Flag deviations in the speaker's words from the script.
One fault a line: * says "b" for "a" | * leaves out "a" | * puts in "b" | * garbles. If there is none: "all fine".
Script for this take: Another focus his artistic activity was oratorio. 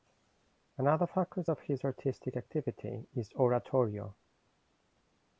* puts in "of"
* says "is" for "was"